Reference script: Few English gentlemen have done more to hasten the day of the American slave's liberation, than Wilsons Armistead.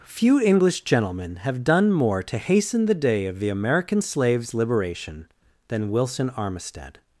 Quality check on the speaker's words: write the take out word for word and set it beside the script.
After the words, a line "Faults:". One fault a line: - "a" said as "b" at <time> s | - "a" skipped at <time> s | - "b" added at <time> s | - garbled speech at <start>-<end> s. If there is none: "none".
Few English gentlemen have done more to hasten the day of the American slave's liberation, than Wilson Armistead.
Faults:
- "Wilsons" said as "Wilson" at 5.9 s